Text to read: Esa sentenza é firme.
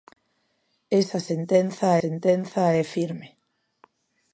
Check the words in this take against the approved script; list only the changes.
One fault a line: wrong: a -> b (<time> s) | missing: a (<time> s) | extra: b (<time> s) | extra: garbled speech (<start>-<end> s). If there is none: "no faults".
extra: sentenza (2.0 s)